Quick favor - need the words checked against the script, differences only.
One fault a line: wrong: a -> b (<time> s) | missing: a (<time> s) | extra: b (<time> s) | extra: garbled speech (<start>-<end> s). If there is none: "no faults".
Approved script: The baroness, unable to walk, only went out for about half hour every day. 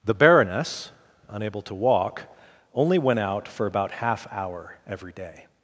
no faults